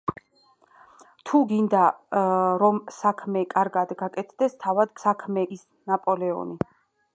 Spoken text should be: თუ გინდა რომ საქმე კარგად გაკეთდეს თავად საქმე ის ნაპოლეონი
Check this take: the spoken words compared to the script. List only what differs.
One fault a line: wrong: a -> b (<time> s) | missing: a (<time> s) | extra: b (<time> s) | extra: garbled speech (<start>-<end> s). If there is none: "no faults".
no faults